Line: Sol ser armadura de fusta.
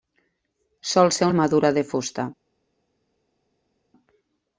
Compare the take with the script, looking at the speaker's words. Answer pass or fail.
pass